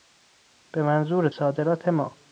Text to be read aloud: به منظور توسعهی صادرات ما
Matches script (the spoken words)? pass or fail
fail